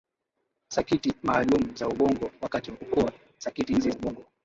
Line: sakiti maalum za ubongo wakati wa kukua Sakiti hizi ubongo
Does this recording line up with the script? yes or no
yes